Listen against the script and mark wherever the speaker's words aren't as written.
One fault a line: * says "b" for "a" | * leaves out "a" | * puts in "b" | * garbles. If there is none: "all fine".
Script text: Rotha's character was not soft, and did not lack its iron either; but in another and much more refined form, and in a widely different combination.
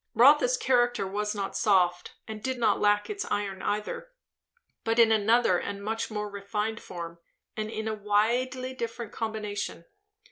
all fine